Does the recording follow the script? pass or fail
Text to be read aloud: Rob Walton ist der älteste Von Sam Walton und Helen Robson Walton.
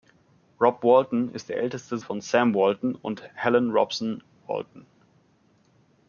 pass